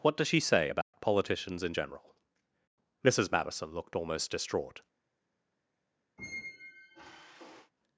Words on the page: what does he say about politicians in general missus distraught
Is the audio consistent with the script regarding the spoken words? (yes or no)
no